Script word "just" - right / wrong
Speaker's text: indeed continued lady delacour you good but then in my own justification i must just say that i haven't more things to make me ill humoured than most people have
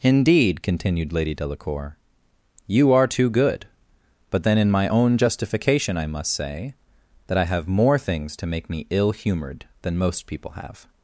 wrong